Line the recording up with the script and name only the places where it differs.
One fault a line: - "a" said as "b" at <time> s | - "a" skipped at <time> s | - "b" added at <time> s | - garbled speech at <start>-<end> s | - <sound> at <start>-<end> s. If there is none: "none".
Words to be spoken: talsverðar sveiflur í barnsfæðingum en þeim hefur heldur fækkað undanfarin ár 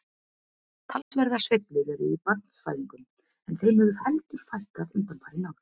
- dropout at 1.0-1.1 s
- "eru" added at 2.0 s